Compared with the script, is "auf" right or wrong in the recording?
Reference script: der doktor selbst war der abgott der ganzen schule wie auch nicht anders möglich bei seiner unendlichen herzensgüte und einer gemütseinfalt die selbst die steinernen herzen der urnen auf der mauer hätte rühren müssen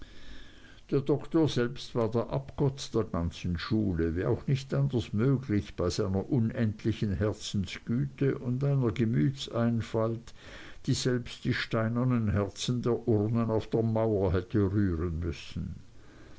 right